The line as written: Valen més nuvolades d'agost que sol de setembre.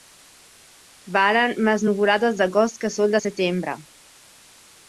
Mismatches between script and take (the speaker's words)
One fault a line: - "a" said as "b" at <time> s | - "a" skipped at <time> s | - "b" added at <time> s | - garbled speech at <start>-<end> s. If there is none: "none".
none